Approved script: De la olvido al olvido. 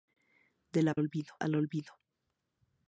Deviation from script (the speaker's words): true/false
false